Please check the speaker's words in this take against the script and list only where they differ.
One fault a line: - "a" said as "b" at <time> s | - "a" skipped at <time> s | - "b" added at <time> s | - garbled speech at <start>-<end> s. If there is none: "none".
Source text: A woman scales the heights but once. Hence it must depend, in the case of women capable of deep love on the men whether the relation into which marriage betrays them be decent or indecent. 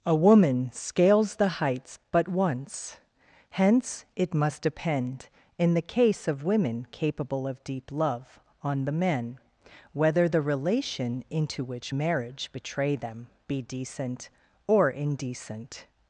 - "betrays" said as "betray" at 12.5 s